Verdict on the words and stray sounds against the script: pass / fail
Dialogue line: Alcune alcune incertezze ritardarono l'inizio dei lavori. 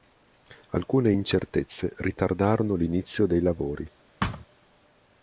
fail